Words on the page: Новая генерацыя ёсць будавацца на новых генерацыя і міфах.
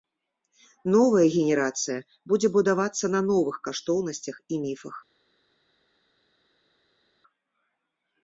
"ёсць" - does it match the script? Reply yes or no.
no